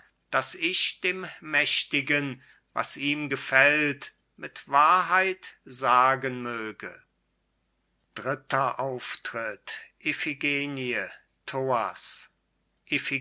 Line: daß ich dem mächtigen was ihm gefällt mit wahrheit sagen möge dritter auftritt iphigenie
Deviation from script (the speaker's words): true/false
false